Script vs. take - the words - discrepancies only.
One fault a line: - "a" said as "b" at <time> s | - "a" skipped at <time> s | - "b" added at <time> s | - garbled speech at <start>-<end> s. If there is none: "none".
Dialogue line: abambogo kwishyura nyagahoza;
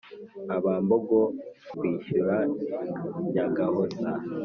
none